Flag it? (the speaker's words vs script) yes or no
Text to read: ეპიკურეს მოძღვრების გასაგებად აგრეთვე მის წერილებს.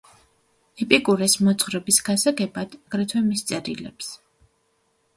no